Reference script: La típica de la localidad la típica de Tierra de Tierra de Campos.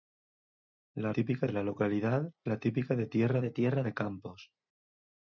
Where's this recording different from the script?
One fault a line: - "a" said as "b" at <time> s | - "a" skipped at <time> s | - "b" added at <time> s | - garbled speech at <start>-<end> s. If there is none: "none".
none